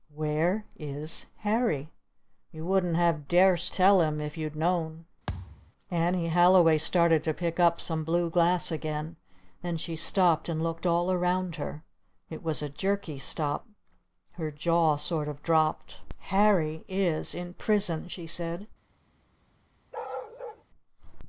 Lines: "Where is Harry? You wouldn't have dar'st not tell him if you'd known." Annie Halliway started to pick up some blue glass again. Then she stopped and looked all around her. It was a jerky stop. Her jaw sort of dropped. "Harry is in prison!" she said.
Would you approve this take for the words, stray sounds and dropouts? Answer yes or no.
no